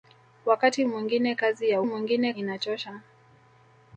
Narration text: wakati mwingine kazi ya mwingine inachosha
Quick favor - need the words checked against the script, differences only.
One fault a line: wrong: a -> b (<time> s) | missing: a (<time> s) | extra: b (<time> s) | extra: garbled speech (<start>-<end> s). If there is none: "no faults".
no faults